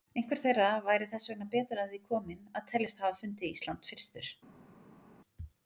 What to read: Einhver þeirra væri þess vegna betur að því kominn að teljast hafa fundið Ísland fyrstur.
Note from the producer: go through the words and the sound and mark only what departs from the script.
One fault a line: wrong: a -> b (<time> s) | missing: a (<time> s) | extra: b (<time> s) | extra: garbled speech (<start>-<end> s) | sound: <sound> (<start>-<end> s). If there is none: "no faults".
no faults